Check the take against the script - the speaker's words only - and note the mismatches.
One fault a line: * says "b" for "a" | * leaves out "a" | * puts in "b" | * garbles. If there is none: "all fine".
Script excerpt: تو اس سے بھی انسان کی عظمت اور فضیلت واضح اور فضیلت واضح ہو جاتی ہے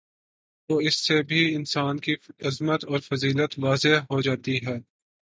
* leaves out "اور فضیلت واضح"